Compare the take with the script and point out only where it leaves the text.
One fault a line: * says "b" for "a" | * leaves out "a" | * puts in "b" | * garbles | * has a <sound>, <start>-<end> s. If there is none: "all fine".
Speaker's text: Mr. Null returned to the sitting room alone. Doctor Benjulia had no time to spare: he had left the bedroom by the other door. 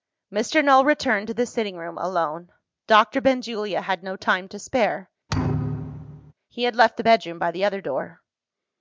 * has a thud, 5.3-6.3 s